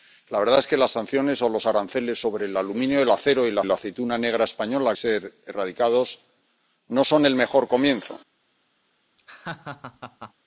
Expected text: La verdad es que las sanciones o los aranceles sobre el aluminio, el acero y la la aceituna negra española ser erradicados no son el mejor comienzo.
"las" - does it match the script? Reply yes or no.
yes